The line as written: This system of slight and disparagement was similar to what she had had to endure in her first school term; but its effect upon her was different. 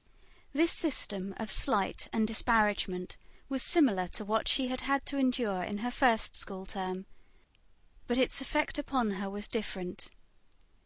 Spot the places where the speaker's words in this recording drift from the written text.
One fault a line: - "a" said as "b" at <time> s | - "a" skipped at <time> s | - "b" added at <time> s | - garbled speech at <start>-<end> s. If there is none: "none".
none